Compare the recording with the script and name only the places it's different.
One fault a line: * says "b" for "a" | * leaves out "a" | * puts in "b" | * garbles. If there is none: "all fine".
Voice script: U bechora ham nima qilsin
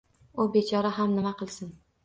all fine